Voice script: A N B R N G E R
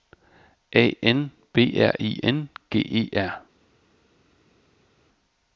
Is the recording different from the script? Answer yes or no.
yes